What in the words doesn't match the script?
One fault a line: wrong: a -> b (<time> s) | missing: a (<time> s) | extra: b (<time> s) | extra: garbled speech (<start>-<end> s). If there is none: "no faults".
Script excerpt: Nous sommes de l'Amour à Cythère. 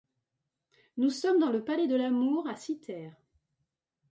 extra: dans le palais (1.4 s)